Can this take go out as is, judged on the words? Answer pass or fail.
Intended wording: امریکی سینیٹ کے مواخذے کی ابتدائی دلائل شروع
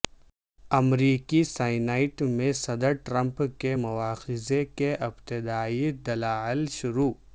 fail